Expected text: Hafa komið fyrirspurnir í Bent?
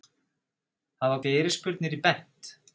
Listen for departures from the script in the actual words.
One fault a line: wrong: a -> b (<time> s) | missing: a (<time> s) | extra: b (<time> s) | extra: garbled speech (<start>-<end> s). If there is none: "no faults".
missing: komið (1.2 s)